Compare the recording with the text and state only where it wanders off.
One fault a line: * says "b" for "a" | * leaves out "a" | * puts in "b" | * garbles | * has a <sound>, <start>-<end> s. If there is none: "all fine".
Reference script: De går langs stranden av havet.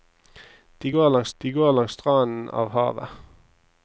* puts in "de går langs"